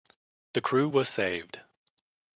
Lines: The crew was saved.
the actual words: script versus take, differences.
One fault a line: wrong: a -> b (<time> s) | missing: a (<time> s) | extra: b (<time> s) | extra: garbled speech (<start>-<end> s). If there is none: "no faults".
no faults